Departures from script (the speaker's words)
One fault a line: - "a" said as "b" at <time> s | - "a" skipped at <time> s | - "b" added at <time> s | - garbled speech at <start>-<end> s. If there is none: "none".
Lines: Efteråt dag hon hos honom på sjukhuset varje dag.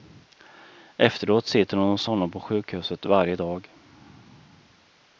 - "dag" said as "sitter" at 1.5 s